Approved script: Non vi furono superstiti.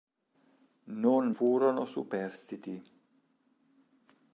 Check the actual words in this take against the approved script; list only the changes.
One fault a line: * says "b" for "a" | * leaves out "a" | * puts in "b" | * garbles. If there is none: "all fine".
* leaves out "vi"